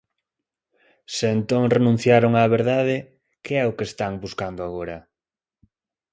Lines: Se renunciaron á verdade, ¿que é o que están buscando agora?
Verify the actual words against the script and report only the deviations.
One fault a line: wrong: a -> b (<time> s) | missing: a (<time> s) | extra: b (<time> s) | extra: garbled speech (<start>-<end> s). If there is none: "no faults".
extra: entón (1.4 s)